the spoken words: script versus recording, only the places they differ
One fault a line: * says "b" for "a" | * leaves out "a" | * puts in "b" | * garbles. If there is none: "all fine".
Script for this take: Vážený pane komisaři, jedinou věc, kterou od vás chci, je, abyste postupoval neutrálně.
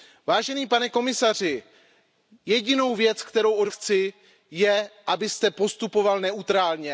* leaves out "vás"